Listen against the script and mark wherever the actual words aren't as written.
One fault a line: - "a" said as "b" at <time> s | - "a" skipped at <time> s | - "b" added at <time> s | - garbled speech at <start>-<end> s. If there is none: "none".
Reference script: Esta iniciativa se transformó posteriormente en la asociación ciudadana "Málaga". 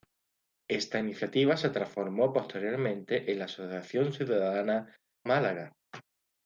none